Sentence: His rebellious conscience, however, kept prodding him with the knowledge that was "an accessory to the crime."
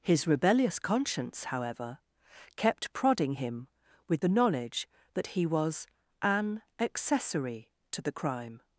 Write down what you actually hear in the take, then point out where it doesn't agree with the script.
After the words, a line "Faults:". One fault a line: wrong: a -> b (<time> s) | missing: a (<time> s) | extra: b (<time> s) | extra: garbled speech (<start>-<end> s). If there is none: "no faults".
His rebellious conscience, however, kept prodding him with the knowledge that he was "an accessory to the crime."
Faults:
extra: he (5.3 s)